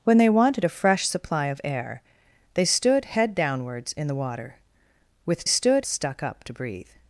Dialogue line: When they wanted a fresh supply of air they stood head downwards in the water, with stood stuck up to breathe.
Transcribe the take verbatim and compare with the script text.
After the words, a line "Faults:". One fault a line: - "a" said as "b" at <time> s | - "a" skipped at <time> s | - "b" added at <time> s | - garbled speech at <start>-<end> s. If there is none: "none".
When they wanted a fresh supply of air they stood head downwards in the water, with stood stuck up to breathe.
Faults:
none